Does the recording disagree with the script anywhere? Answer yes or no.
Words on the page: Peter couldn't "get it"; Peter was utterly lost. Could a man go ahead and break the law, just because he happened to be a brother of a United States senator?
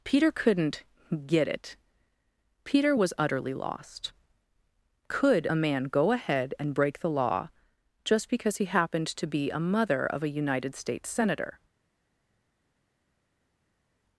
yes